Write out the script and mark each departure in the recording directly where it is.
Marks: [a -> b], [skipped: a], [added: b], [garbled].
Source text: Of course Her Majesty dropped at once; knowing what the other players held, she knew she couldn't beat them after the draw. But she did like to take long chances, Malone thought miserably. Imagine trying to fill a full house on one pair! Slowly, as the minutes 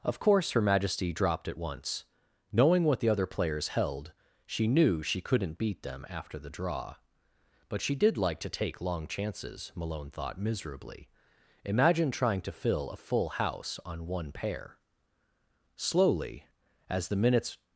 Of course Her Majesty dropped at once; knowing what the other players held, she knew she couldn't beat them after the draw. But she did like to take long chances, Malone thought miserably. Imagine trying to fill a full house on one pair! Slowly, as the minutes